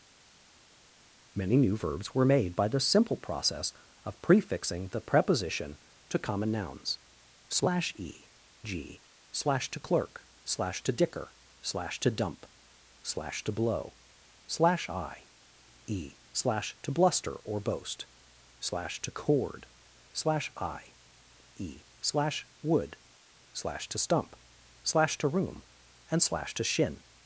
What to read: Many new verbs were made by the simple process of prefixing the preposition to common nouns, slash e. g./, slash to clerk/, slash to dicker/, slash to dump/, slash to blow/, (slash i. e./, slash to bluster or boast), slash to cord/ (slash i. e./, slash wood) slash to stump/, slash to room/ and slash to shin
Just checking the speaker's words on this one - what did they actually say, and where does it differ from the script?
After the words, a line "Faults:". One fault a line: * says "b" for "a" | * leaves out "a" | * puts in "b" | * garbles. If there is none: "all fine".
Many new verbs were made by the simple process of prefixing the preposition to common nouns, slash e. g./, slash to clerk/, slash to dicker/, slash to dump/, slash to blow/, (slash i. e./, slash to bluster or boast), slash to cord/ (slash i. e./, slash wood) slash to stump/, slash to room/ and slash to shin
Faults:
all fine